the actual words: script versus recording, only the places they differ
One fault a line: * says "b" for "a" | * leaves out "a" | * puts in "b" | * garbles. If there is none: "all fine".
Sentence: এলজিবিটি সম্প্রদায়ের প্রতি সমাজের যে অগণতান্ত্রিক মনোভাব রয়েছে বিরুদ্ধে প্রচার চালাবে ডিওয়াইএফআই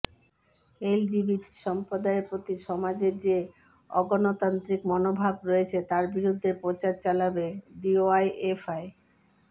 * puts in "তার"